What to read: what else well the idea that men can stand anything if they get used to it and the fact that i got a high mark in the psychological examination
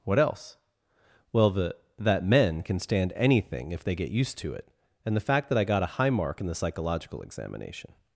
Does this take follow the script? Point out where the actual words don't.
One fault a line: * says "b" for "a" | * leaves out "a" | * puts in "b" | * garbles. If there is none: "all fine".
* leaves out "idea"